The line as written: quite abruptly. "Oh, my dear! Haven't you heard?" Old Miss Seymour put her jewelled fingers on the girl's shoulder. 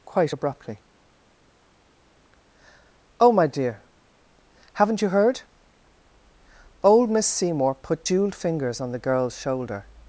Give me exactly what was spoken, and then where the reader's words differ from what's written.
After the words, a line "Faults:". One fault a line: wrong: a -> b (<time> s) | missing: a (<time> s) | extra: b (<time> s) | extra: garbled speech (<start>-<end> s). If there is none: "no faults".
quite abruptly. "Oh, my dear! Haven't you heard?" Old Miss Seymour put jewelled fingers on the girl's shoulder.
Faults:
missing: her (8.1 s)